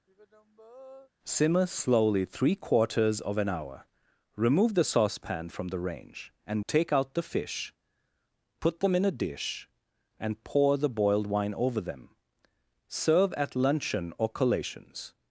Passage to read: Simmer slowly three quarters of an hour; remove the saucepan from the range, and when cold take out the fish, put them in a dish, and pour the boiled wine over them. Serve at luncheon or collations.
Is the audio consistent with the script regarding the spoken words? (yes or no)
no